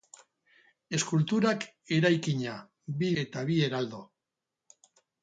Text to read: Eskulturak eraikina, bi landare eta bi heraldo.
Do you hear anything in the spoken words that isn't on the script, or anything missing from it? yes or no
yes